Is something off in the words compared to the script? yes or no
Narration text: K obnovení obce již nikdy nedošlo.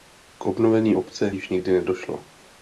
no